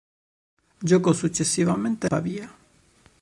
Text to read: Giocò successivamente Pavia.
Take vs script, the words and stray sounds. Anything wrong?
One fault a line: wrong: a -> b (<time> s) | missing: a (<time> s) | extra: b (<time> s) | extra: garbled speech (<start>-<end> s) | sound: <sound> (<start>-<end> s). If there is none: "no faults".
no faults